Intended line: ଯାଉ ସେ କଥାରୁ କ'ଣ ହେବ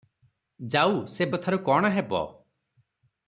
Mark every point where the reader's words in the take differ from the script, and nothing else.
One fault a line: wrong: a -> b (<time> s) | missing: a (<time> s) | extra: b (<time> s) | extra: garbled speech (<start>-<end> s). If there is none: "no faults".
no faults